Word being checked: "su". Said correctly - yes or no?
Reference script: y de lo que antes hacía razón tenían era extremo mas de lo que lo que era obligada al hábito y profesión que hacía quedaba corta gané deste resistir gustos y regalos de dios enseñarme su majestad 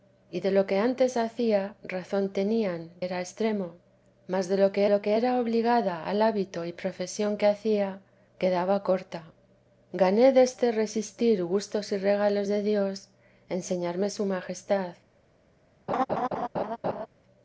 yes